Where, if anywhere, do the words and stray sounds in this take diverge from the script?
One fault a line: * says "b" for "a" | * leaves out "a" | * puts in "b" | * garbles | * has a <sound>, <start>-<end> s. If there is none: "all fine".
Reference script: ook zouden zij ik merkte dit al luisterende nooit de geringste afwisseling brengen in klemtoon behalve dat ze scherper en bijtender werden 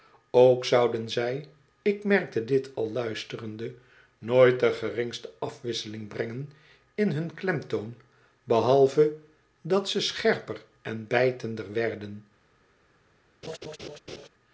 * puts in "hun"
* has a laugh, 13.4-14.3 s